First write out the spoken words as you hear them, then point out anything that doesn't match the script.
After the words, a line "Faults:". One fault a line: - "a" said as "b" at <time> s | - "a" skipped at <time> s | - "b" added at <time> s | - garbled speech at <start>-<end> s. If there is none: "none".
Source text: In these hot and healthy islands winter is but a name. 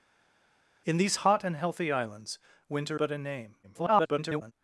In these hot and healthy islands winter but a name. [garbled]
Faults:
- "is" skipped at 3.0 s
- garbled speech at 3.6-4.5 s